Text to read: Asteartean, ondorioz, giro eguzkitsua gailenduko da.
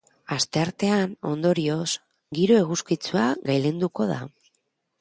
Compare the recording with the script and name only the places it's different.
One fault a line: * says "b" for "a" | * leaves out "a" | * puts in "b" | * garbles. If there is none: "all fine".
all fine